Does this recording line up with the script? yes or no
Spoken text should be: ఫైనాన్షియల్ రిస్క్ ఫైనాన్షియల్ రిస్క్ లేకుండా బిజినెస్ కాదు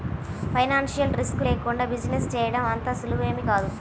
no